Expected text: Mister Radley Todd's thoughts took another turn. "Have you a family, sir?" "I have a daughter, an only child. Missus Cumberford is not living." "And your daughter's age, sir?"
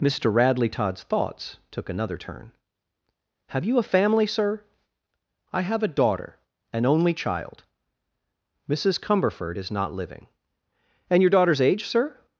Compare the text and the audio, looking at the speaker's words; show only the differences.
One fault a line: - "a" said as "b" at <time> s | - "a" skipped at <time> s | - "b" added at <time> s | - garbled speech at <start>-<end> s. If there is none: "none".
none